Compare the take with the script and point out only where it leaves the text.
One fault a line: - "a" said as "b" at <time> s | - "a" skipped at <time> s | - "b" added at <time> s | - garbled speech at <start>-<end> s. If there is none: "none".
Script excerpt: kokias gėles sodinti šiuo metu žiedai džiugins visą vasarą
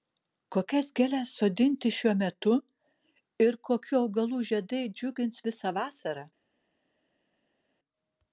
- "ir kokių augalų" added at 3.5 s